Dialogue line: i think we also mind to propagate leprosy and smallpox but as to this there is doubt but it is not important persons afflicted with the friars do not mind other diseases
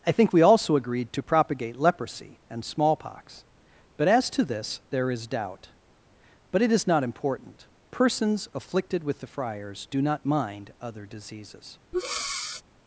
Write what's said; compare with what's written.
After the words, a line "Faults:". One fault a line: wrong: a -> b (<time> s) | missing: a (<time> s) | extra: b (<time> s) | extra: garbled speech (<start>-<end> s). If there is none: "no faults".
i think we also agreed to propagate leprosy and smallpox but as to this there is doubt but it is not important persons afflicted with the friars do not mind other diseases
Faults:
wrong: mind -> agreed (0.8 s)